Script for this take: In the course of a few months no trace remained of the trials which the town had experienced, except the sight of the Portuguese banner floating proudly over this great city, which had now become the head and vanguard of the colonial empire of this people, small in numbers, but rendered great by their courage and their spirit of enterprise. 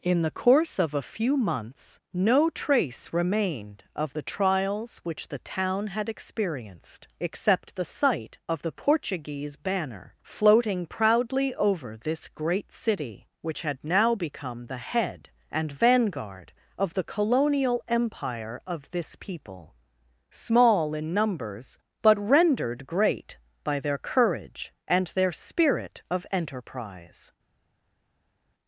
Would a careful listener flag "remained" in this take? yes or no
no